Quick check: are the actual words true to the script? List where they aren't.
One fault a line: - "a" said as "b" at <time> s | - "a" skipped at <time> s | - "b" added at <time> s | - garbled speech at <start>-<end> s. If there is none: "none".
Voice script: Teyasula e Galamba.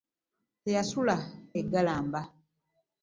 none